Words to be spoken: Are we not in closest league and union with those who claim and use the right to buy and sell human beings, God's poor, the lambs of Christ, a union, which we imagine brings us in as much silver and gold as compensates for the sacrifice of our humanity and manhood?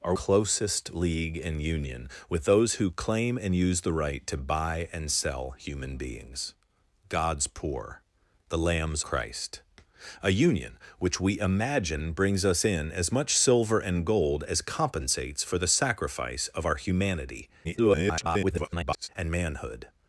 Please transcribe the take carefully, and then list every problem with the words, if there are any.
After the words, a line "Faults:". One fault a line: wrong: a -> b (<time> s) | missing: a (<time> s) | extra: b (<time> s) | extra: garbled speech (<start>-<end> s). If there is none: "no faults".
Are closest league and union with those who claim and use the right to buy and sell human beings, God's poor, the lambs Christ, a union, which we imagine brings us in as much silver and gold as compensates for the sacrifice of our humanity [garbled] and manhood?
Faults:
missing: we not in (0.1 s)
missing: of (9.0 s)
extra: garbled speech (17.6-19.1 s)